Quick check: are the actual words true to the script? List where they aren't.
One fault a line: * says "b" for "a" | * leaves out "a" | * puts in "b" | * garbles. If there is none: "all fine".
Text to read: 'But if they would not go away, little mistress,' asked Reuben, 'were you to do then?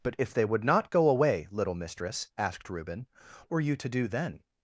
all fine